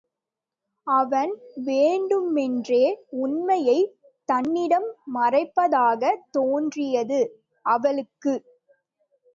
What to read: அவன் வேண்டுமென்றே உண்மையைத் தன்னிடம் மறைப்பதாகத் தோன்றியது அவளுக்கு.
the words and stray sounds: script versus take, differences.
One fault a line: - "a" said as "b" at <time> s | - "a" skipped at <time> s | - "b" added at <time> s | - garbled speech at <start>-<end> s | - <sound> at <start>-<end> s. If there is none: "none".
none